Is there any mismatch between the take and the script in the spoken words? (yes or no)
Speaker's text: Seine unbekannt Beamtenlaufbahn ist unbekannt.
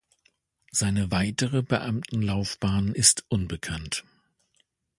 yes